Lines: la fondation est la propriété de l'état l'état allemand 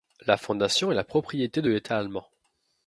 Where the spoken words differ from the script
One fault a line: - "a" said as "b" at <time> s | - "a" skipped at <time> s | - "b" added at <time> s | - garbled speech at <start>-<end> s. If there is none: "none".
- "l'état" skipped at 2.0 s